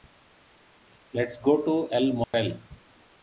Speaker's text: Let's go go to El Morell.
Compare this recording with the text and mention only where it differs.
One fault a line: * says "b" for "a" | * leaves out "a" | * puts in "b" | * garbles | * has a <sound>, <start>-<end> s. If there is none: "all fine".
* leaves out "go"
* has a dropout, 2.2-2.3 s